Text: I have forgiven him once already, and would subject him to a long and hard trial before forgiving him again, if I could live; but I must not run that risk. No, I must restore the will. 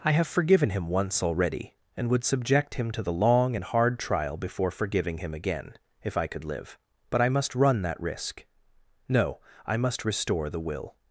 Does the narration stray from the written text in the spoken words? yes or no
yes